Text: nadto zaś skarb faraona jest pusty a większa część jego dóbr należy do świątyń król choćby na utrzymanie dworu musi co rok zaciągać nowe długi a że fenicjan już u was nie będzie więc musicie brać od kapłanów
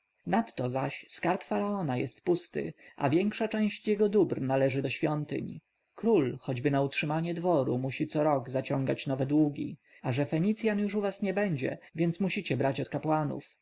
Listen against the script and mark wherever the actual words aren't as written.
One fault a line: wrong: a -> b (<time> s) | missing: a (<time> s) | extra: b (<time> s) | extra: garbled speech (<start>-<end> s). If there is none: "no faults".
no faults